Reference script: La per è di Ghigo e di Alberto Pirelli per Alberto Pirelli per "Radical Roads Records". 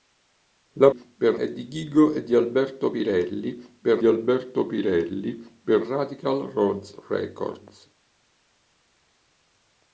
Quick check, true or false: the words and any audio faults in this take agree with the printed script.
true